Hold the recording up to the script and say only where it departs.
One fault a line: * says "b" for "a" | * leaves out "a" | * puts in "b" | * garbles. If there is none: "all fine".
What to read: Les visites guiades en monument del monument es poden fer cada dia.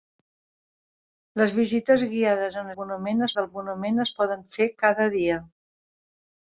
all fine